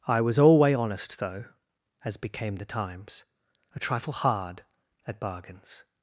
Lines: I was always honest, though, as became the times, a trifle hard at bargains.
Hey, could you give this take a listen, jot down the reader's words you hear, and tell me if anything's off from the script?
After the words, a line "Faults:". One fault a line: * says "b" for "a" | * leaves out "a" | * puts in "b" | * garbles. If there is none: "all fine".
I was alway honest, though, as became the times, a trifle hard at bargains.
Faults:
* says "alway" for "always"